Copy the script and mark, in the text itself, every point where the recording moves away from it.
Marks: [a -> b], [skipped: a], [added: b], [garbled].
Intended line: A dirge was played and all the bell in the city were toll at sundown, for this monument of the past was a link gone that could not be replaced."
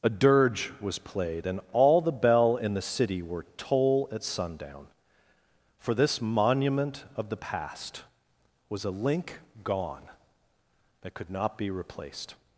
A dirge was played and all the bell in the city were toll at sundown, for this monument of the past was a link gone that could not be replaced."